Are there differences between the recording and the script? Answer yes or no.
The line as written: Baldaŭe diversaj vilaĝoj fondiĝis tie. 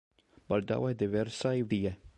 yes